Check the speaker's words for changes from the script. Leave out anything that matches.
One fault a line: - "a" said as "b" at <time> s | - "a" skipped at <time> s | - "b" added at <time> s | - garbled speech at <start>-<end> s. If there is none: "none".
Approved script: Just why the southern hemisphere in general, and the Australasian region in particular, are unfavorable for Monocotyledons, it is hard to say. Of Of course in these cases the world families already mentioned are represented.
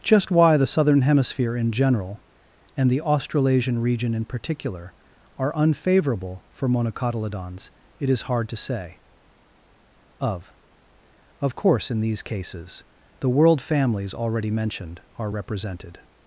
none